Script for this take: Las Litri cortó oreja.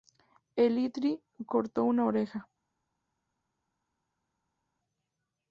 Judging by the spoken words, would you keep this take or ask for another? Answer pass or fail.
fail